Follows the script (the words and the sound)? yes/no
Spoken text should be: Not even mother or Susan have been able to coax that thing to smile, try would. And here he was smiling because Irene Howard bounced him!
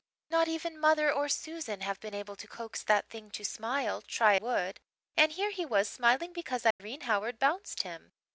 no